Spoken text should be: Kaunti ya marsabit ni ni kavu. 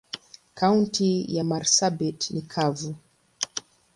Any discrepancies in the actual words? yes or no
yes